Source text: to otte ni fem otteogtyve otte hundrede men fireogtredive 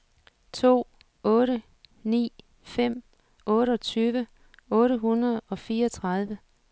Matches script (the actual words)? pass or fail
fail